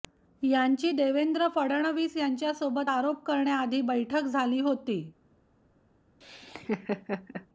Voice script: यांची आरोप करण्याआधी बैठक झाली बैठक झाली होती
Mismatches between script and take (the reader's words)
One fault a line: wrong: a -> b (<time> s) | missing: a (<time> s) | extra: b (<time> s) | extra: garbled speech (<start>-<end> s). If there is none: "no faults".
extra: देवेंद्र फडणवीस यांच्यासोबत (0.9 s)
missing: बैठक झाली (4.6 s)